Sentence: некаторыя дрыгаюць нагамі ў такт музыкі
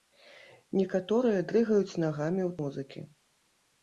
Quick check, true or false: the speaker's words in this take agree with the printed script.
false